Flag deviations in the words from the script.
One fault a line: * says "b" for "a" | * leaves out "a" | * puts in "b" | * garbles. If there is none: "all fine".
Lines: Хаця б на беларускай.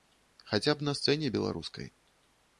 * puts in "сцэне"